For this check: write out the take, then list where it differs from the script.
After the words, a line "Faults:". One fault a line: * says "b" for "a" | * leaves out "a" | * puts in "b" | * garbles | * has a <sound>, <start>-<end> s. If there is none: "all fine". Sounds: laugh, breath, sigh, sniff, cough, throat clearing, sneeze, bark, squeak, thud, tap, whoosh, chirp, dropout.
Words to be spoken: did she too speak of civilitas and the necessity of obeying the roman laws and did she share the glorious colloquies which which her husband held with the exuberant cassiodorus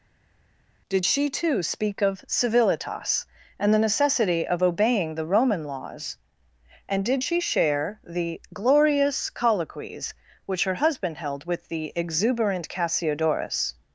did she too speak of civilitas and the necessity of obeying the roman laws and did she share the glorious colloquies which her husband held with the exuberant cassiodorus
Faults:
* leaves out "which"